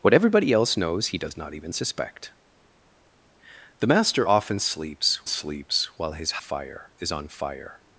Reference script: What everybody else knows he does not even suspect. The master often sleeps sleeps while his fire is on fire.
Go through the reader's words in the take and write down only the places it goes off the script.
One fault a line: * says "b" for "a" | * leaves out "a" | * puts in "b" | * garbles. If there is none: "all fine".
all fine